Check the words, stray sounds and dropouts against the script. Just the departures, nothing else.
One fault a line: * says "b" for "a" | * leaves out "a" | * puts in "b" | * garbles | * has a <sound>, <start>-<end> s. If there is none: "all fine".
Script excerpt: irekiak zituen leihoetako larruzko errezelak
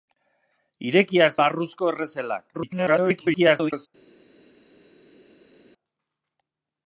* leaves out "zituen leihoetako"
* garbles